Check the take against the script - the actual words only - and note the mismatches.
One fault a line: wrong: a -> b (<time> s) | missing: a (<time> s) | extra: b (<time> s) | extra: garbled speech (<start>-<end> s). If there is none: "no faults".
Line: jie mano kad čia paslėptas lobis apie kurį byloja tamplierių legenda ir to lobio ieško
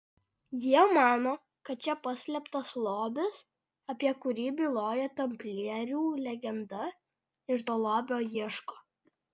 no faults